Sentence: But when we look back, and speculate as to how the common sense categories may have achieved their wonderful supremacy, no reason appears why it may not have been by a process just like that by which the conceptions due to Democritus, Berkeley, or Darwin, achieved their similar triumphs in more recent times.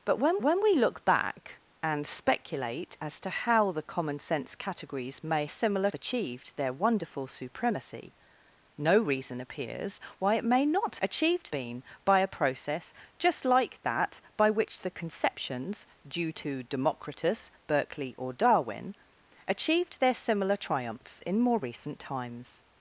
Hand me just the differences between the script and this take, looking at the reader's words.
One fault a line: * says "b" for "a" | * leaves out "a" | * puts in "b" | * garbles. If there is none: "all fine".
* puts in "when"
* says "similar" for "have"
* says "achieved" for "have"